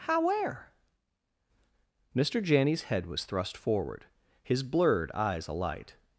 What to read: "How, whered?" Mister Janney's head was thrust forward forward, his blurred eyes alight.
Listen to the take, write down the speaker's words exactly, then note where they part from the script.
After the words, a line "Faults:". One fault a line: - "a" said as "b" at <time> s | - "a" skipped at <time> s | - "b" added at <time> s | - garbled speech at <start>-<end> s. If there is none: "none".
"How, where?" Mister Janney's head was thrust forward, his blurred eyes alight.
Faults:
- "whered" said as "where" at 0.2 s
- "forward" skipped at 4.1 s